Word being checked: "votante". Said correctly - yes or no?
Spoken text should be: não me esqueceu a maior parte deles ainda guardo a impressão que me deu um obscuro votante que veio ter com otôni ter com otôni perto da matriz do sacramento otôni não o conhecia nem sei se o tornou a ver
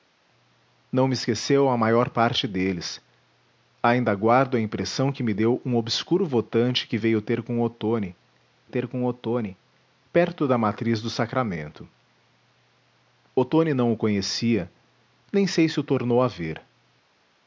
yes